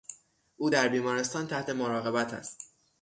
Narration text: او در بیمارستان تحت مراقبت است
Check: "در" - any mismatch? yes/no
no